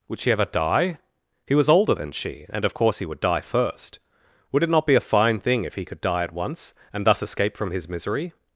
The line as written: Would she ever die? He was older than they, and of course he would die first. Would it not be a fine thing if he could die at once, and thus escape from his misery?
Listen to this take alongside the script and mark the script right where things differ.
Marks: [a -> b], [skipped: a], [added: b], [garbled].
Would she ever die? He was older than [they, -> she] and of course he would die first. Would it not be a fine thing if he could die at once, and thus escape from his misery?